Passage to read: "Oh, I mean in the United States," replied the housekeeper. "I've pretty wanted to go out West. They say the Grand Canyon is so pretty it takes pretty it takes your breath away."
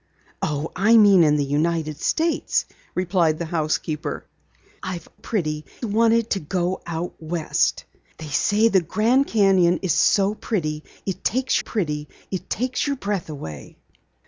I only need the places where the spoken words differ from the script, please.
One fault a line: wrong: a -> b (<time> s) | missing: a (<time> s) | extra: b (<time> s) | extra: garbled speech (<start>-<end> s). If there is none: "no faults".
no faults